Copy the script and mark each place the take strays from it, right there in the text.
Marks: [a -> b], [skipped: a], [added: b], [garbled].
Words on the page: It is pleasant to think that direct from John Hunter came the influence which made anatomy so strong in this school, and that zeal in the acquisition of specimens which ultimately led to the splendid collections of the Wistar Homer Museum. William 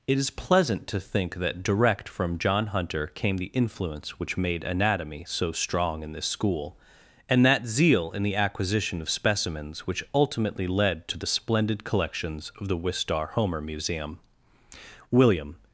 It is pleasant to think that direct from John Hunter came the influence which made anatomy so strong in this school, and that zeal in the acquisition of specimens which ultimately led to the splendid collections of the Wistar Homer Museum. William